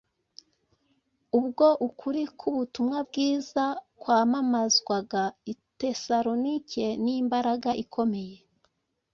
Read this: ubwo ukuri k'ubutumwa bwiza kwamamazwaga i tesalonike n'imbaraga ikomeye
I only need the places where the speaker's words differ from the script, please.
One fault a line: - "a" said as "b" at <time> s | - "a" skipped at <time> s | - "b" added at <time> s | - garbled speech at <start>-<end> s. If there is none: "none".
none